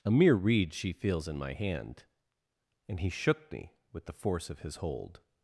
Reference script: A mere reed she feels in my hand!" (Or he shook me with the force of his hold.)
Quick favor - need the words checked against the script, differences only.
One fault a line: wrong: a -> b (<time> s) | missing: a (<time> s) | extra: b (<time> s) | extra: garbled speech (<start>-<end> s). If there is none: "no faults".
wrong: Or -> And (2.9 s)